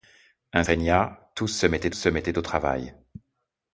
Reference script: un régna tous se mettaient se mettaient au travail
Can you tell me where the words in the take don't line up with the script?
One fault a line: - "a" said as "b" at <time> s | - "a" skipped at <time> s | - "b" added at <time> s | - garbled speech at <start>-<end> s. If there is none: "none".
none